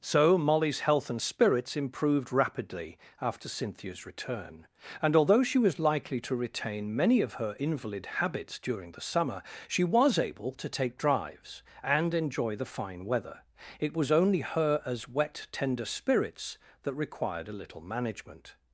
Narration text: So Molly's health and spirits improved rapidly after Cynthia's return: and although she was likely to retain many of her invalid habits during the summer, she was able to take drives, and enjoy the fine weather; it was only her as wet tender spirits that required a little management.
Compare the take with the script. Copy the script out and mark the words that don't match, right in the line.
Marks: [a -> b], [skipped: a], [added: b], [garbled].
So Molly's health and spirits improved rapidly after Cynthia's return: and although she was likely to retain many of her invalid habits during the summer, she was able to take drives, and enjoy the fine weather; it was only her as wet tender spirits that required a little management.